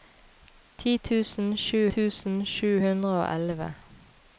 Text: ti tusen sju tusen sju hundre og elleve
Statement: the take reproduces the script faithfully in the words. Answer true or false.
true